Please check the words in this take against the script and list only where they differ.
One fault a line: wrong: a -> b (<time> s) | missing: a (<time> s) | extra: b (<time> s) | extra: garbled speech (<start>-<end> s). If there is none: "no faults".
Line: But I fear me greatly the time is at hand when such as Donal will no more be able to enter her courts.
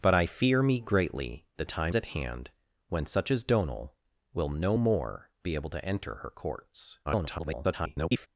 missing: is (1.9 s)
extra: garbled speech (7.1-8.3 s)